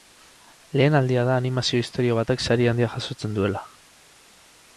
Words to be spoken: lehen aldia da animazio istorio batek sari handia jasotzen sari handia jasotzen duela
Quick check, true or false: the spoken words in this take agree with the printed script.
false